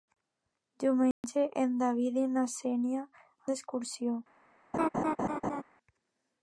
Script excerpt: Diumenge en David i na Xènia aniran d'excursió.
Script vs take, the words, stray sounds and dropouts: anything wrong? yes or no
yes